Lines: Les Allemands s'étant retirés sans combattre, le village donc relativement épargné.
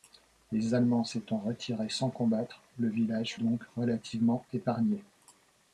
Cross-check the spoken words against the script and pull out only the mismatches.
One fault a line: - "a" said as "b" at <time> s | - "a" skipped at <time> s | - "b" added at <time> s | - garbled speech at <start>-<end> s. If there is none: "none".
none